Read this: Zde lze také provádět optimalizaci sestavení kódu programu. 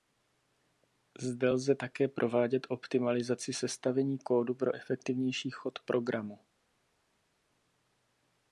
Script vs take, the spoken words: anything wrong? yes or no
yes